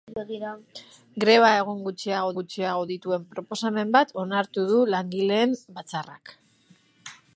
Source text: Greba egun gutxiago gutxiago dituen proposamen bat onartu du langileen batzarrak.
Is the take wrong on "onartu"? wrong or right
right